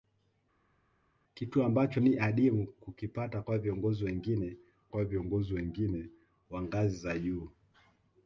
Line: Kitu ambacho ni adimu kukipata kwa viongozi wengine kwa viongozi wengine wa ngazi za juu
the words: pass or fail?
pass